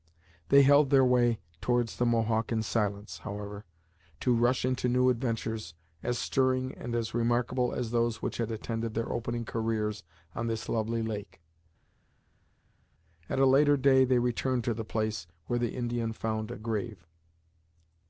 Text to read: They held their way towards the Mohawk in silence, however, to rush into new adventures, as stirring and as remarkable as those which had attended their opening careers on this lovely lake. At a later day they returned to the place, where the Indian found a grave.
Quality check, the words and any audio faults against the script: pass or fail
pass